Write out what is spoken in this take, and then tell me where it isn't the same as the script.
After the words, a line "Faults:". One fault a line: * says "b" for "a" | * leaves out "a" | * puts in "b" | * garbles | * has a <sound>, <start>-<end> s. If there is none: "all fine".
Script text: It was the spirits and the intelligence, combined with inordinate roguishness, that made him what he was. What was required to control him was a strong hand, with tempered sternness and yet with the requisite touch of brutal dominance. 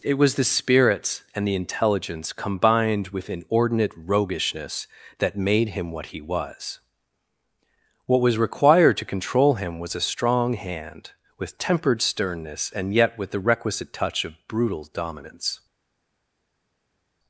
It was the spirits and the intelligence, combined with inordinate roguishness, that made him what he was. What was required to control him was a strong hand, with tempered sternness and yet with the requisite touch of brutal dominance.
Faults:
all fine